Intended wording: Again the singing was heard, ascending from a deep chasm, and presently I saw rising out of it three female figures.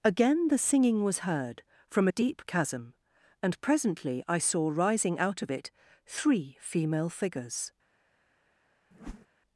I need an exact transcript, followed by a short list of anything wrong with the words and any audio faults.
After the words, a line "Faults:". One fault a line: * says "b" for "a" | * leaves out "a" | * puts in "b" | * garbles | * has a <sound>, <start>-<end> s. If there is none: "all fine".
Again the singing was heard, from a deep chasm, and presently I saw rising out of it three female figures.
Faults:
* leaves out "ascending"
* has a whoosh, 8.9-9.3 s